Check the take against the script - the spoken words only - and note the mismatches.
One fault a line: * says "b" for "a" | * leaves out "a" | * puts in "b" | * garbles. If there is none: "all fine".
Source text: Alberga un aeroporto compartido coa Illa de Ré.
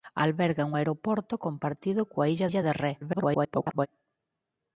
* puts in "Illa"
* garbles